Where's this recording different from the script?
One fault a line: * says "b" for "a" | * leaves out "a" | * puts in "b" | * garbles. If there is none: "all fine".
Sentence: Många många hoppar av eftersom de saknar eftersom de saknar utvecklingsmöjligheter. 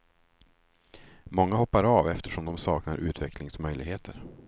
* leaves out "många"
* leaves out "eftersom de saknar"